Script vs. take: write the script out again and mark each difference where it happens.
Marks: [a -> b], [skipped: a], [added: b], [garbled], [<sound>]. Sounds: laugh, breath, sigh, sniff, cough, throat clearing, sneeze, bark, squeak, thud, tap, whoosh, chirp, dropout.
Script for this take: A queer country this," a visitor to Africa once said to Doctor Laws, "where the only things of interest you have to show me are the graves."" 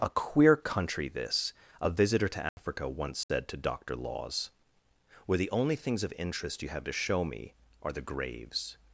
A queer country this," a visitor to Africa [dropout] once said [dropout] to Doctor Laws, "where the only things of interest you have to show me are the graves.""